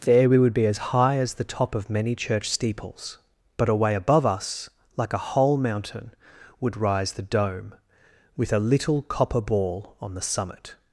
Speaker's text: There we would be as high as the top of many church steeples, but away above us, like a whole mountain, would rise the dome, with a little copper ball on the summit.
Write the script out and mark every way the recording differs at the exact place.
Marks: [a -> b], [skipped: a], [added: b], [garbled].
There we would be as high as the top of many church steeples, but away above us, like a whole mountain, would rise the dome, with a little copper ball on the summit.